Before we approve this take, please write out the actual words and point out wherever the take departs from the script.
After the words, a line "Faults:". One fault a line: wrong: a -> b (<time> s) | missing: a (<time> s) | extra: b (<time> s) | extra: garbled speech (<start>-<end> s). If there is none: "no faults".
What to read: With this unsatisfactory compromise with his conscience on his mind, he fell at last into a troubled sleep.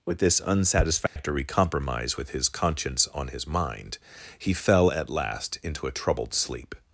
With this unsatisfactory compromise with his conscience on his mind, he fell at last into a troubled sleep.
Faults:
no faults